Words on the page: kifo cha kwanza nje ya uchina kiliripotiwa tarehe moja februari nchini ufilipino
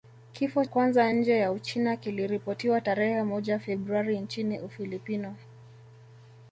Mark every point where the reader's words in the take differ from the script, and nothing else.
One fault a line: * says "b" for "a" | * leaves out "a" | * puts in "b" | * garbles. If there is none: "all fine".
* leaves out "cha"